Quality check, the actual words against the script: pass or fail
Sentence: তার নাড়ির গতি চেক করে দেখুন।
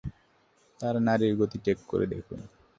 pass